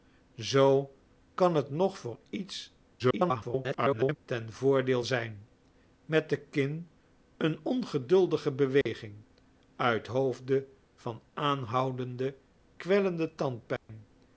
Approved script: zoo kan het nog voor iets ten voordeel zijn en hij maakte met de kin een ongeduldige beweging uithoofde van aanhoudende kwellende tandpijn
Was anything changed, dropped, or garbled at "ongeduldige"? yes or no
no